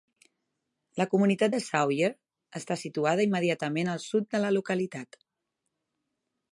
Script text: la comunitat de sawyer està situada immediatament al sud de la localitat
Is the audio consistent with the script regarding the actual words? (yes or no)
yes